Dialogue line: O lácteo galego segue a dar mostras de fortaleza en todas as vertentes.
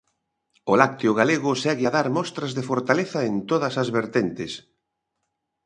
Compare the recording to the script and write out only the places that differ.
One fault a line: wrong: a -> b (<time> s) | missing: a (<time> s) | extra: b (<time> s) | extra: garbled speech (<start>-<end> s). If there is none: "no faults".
no faults